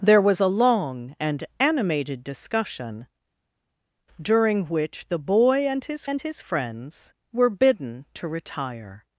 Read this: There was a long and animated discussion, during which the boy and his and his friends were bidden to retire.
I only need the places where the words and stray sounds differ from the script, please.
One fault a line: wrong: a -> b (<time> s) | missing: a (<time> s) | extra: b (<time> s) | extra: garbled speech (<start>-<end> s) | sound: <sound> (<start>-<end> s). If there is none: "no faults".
no faults